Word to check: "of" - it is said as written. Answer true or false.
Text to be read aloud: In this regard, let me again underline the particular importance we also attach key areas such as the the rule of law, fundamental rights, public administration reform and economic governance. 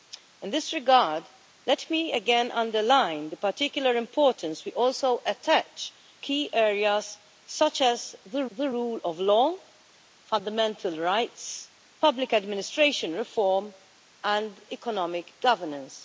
true